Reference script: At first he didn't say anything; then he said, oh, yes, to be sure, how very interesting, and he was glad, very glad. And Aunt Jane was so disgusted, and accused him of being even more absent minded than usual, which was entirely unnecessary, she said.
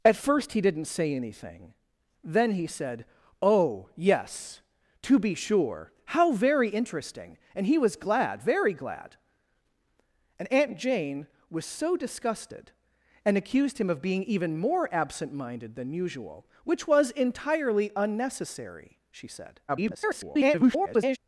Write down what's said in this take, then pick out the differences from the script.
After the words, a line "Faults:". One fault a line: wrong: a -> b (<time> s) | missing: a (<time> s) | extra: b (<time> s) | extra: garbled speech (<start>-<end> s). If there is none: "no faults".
At first he didn't say anything; then he said, oh, yes, to be sure, how very interesting, and he was glad, very glad. And Aunt Jane was so disgusted, and accused him of being even more absent minded than usual, which was entirely unnecessary, she said. [garbled]
Faults:
extra: garbled speech (19.7-21.2 s)